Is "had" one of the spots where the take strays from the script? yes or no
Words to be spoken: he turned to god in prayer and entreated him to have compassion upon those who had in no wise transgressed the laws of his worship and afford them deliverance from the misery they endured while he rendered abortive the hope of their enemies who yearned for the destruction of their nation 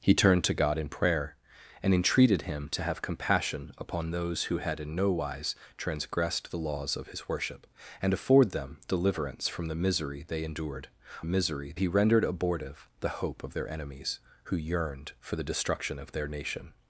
no